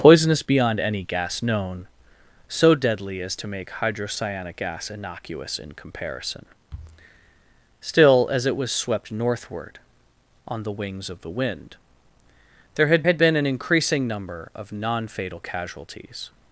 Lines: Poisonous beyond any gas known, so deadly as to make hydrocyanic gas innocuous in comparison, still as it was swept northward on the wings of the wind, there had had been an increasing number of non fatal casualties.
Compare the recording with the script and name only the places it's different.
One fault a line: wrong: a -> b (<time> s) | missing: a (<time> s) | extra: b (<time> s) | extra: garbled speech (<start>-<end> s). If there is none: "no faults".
no faults